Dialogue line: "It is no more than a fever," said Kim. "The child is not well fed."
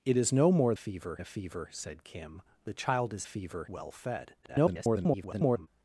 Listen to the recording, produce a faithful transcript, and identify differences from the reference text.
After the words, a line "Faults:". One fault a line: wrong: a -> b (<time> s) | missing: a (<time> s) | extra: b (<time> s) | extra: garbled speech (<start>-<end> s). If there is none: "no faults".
"It is no more fever a fever," said Kim. "The child is fever well fed." [garbled]
Faults:
wrong: than -> fever (0.7 s)
wrong: not -> fever (3.2 s)
extra: garbled speech (4.4-5.7 s)